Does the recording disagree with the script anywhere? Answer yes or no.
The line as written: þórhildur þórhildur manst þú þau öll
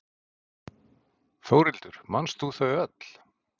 yes